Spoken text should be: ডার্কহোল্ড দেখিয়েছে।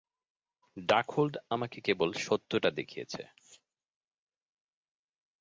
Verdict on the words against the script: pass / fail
fail